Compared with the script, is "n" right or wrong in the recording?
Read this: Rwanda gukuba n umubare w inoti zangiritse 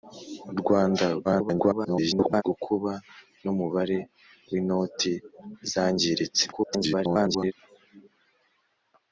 right